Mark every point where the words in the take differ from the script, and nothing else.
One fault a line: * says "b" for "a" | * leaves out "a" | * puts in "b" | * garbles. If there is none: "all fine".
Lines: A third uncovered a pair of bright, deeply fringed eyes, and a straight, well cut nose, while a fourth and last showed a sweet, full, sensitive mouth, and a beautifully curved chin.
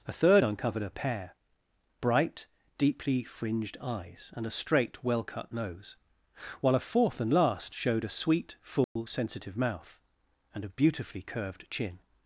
* leaves out "of"